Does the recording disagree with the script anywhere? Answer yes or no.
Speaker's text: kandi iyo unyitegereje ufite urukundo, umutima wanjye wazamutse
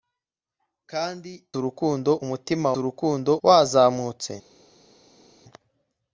yes